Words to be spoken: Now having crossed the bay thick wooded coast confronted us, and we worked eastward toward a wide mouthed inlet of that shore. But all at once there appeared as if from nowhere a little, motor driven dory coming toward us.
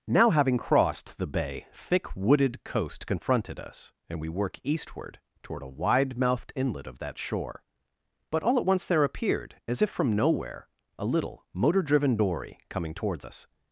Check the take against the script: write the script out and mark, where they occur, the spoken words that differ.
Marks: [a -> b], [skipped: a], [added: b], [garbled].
Now having crossed the bay thick wooded coast confronted us, and we [worked -> work] eastward toward a wide mouthed inlet of that shore. But all at once there appeared as if from nowhere a little, motor driven dory coming [toward -> towards] us.